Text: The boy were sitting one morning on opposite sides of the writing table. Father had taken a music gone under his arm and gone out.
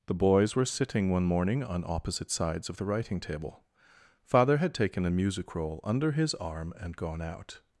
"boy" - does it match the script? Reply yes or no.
no